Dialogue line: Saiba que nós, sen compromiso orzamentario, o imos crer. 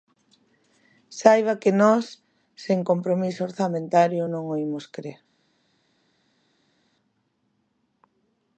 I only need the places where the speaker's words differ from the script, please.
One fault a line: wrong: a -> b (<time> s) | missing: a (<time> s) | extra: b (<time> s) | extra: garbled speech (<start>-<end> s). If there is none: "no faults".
extra: non (4.3 s)